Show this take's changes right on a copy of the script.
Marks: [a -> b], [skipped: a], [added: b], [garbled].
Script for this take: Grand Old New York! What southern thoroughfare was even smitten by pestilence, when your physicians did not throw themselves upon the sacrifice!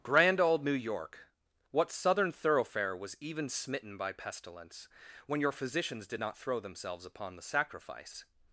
Grand Old New York! What southern thoroughfare was even smitten by pestilence, when your physicians did not throw themselves upon the sacrifice!